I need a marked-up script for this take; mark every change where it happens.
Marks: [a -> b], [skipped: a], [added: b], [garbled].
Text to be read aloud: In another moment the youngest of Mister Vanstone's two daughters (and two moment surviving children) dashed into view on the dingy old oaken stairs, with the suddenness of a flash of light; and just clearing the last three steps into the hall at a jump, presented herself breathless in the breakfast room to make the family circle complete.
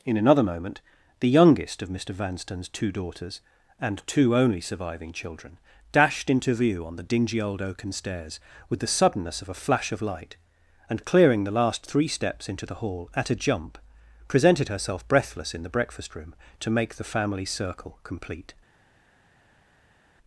In another moment the youngest of Mister Vanstone's two daughters (and two [moment -> only] surviving children) dashed into view on the dingy old oaken stairs, with the suddenness of a flash of light; and [skipped: just] clearing the last three steps into the hall at a jump, presented herself breathless in the breakfast room to make the family circle complete.